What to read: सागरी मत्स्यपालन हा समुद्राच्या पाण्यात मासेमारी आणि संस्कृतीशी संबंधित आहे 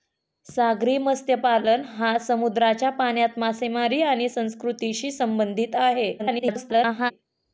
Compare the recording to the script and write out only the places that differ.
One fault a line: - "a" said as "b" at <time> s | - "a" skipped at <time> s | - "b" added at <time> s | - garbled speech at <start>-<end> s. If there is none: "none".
- garbled speech at 6.2-7.1 s